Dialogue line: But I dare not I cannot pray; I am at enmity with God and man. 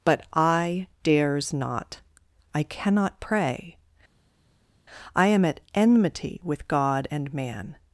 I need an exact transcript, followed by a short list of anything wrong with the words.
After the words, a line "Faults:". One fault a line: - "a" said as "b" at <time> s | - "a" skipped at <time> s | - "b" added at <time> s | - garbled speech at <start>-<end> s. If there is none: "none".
But I dares not I cannot pray; I am at enmity with God and man.
Faults:
- "dare" said as "dares" at 1.0 s